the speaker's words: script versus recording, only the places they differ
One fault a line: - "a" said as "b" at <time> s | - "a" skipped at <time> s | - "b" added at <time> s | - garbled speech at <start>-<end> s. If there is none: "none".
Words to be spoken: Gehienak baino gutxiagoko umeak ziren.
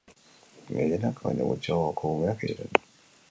none